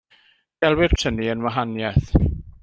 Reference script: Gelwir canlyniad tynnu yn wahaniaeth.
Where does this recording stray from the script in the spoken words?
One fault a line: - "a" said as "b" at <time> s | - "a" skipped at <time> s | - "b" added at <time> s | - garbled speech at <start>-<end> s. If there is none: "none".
- "canlyniad" skipped at 0.9 s